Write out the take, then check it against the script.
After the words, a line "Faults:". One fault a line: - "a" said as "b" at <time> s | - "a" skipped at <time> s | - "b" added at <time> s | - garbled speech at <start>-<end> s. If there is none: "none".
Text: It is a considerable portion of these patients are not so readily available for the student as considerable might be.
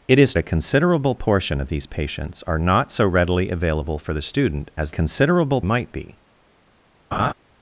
It is a considerable portion of these patients are not so readily available for the student as considerable might be.
Faults:
none